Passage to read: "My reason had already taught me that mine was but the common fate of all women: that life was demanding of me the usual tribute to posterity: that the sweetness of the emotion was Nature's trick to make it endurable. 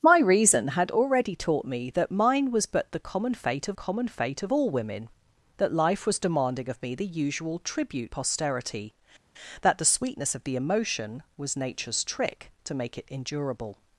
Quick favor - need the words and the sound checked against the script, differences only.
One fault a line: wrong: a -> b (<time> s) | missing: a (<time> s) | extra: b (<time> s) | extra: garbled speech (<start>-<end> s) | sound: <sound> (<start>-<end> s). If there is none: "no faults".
extra: common fate of (3.7 s)
missing: to (8.1 s)